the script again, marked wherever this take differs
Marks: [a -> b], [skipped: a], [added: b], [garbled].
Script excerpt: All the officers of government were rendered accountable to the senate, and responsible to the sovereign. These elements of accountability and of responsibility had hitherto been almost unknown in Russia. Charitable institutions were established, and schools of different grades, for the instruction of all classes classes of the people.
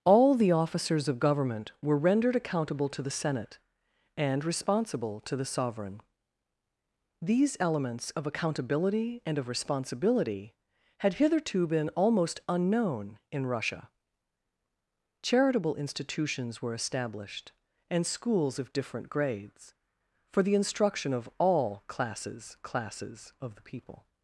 All the officers of government were rendered accountable to the senate, and responsible to the sovereign. These elements of accountability and of responsibility had hitherto been almost unknown in Russia. Charitable institutions were established, and schools of different grades, for the instruction of all classes classes of the people.